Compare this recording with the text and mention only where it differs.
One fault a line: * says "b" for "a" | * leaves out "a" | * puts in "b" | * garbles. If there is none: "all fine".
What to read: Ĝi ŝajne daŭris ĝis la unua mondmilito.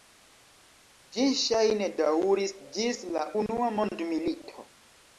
all fine